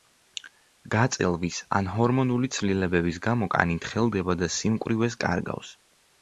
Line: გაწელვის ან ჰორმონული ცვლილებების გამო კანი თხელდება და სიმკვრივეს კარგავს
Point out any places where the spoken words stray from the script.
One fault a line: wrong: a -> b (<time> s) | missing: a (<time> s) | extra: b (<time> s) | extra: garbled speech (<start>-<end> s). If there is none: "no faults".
no faults